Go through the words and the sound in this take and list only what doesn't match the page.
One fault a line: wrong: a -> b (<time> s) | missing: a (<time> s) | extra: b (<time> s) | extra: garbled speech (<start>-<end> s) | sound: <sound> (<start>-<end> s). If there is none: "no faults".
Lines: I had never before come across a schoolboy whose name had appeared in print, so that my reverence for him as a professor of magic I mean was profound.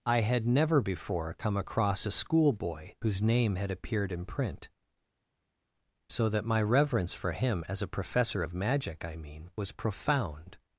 no faults